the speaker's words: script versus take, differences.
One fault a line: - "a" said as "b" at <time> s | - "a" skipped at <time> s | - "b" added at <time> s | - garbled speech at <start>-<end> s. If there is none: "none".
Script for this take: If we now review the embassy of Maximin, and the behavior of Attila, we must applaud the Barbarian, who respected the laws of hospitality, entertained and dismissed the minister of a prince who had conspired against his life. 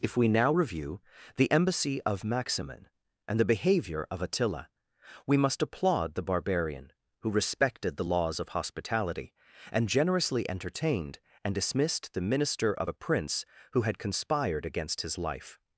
- "and generously" added at 9.7 s